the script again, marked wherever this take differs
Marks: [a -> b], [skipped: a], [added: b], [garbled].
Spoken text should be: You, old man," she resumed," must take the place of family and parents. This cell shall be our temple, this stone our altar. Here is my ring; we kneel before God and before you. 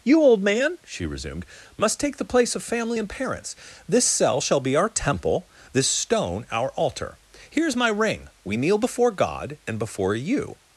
You, old man," she resumed," must take the place of family and parents. This cell shall be our temple, this stone our altar. Here is my ring; we kneel before God and before you.